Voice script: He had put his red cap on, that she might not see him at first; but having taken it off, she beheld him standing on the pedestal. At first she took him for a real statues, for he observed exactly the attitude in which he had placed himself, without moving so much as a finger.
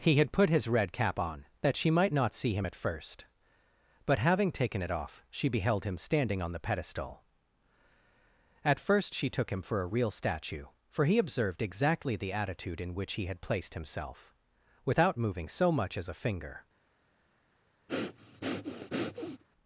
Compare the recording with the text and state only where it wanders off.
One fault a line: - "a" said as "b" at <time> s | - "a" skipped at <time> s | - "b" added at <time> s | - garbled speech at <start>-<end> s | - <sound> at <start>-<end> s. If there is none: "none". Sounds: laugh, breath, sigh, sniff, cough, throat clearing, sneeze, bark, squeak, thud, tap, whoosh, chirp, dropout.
- "statues" said as "statue" at 10.1 s
- breath at 17.9-19.4 s